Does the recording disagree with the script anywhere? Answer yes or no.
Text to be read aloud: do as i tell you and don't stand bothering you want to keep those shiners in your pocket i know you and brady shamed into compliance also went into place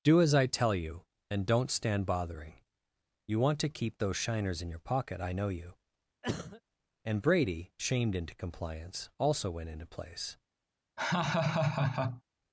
no